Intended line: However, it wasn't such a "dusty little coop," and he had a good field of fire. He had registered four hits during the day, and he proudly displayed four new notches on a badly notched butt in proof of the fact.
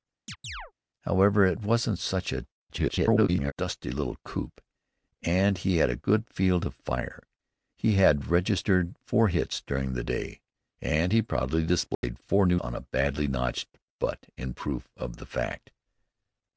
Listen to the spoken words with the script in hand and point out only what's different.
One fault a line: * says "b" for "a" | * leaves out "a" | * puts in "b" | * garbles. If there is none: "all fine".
* garbles
* leaves out "notches"